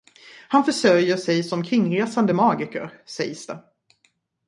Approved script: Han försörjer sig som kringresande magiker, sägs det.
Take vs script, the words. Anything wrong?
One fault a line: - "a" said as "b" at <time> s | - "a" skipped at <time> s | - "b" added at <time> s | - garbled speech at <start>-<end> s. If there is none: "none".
none